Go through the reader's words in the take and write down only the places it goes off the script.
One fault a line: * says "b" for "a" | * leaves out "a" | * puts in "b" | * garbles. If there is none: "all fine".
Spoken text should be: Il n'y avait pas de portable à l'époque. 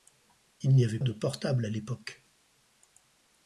* leaves out "pas"